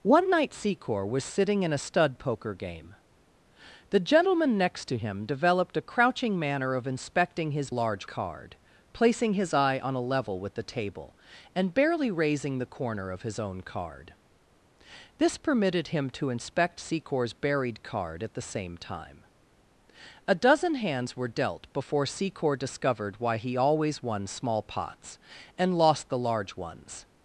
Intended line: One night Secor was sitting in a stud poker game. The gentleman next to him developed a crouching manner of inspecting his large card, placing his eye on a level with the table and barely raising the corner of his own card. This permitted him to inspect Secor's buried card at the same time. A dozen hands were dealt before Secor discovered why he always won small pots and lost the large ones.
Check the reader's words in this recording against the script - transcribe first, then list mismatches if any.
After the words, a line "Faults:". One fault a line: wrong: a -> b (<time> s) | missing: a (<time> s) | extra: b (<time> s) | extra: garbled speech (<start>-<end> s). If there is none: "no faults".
One night Secor was sitting in a stud poker game. The gentleman next to him developed a crouching manner of inspecting his large card, placing his eye on a level with the table and barely raising the corner of his own card. This permitted him to inspect Secor's buried card at the same time. A dozen hands were dealt before Secor discovered why he always won small pots and lost the large ones.
Faults:
no faults